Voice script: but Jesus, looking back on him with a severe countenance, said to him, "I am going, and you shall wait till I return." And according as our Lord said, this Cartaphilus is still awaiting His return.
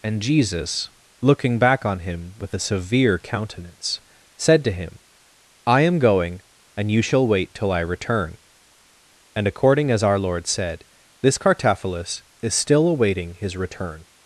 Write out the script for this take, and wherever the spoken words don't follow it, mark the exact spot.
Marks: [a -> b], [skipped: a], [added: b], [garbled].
[but -> and] Jesus, looking back on him with a severe countenance, said to him, "I am going, and you shall wait till I return." And according as our Lord said, this Cartaphilus is still awaiting His return.